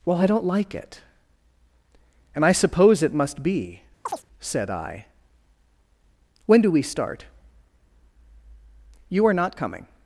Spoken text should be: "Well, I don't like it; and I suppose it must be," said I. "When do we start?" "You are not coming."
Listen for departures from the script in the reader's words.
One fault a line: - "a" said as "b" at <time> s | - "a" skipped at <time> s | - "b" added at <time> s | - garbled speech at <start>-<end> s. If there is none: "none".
none